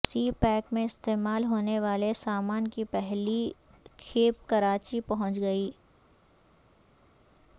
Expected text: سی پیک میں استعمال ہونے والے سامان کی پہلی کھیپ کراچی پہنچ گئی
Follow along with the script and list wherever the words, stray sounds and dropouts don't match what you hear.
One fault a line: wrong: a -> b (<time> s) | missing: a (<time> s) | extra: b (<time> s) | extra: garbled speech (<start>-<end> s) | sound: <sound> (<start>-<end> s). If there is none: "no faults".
no faults